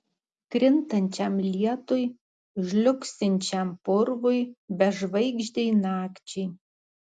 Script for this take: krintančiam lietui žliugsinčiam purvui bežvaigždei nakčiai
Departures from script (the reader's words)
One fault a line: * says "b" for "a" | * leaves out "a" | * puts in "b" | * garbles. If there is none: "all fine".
all fine